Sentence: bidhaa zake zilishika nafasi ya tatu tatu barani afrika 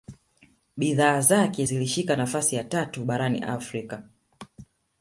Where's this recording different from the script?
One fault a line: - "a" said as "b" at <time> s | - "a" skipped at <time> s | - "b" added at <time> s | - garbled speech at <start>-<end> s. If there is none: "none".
- "tatu" skipped at 3.1 s